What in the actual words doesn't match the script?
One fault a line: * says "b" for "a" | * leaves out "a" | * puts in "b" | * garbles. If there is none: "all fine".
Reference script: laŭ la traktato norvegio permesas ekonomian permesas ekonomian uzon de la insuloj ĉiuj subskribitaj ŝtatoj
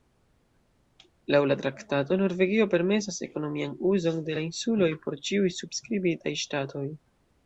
* leaves out "permesas ekonomian"
* puts in "por"